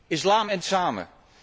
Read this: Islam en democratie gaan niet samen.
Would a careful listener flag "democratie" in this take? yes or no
yes